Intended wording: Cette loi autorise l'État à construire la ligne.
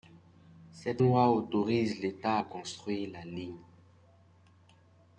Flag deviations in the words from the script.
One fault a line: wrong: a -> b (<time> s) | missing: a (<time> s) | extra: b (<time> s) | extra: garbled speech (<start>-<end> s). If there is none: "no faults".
no faults